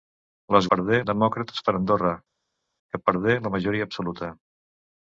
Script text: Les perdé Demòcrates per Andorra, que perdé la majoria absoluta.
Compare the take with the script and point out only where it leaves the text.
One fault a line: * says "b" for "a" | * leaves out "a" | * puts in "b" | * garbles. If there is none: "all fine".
all fine